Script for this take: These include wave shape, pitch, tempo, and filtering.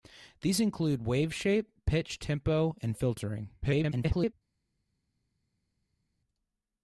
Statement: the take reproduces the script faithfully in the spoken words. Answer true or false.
false